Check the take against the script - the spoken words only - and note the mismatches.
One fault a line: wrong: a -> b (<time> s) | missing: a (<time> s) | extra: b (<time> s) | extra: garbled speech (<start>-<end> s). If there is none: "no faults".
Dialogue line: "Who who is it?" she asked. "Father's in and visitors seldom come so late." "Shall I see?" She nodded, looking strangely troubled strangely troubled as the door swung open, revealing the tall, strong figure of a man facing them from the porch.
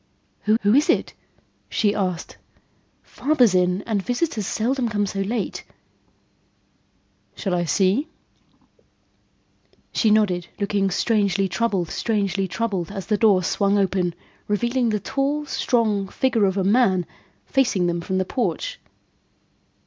no faults